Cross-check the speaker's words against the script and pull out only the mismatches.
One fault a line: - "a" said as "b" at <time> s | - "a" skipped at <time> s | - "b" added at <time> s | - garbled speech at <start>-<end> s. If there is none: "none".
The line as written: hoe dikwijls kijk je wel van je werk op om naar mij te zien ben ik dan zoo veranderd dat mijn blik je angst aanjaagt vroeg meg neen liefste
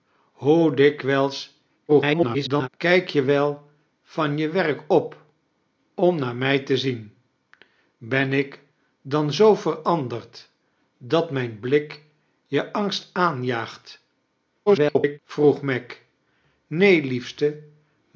- garbled speech at 1.9-2.7 s
- garbled speech at 14.7-15.2 s